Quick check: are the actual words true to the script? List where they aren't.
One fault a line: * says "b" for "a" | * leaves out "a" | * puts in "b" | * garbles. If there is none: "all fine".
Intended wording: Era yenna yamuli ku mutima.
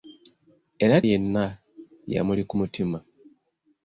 all fine